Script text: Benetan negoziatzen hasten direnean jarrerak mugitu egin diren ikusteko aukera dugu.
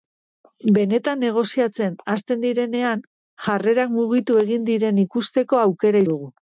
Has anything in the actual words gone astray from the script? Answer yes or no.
no